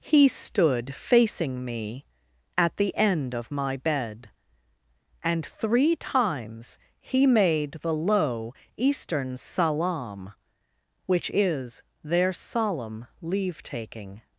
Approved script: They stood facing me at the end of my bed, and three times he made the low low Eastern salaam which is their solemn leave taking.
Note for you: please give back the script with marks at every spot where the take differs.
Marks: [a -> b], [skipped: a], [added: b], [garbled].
[They -> He] stood facing me at the end of my bed, and three times he made the low [skipped: low] Eastern salaam which is their solemn leave taking.